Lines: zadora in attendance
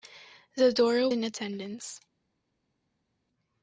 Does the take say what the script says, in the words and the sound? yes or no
yes